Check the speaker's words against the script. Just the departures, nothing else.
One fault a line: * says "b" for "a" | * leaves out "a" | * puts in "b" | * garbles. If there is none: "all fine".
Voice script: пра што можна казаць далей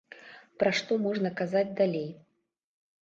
all fine